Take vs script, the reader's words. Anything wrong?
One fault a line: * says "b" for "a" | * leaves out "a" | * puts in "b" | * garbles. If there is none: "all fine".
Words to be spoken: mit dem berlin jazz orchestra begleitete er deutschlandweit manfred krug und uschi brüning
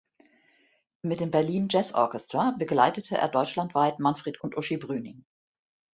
* leaves out "krug"